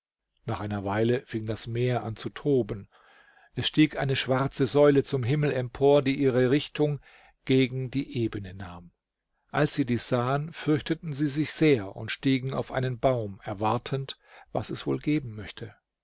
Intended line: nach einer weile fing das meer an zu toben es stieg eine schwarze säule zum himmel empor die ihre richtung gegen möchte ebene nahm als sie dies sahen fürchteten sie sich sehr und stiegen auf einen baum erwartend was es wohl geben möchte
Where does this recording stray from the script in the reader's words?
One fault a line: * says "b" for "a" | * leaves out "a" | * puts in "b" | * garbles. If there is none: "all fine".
* says "die" for "möchte"